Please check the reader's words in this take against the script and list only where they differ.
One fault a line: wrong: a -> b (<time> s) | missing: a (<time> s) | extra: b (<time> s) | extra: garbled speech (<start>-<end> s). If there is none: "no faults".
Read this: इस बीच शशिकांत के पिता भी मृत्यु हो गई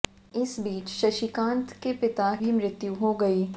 no faults